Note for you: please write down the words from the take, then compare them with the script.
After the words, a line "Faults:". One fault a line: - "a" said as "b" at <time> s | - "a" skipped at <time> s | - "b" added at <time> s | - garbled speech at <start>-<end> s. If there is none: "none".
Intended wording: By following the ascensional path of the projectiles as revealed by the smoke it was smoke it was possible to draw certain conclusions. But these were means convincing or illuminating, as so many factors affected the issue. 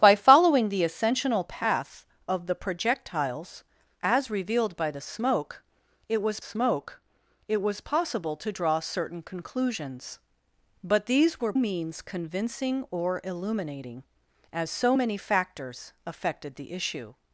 By following the ascensional path of the projectiles as revealed by the smoke it was smoke it was possible to draw certain conclusions. But these were means convincing or illuminating, as so many factors affected the issue.
Faults:
none